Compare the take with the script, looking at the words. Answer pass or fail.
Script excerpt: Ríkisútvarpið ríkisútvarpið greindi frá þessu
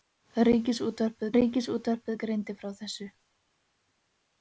pass